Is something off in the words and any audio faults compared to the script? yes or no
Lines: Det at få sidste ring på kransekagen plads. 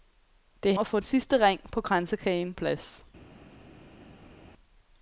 no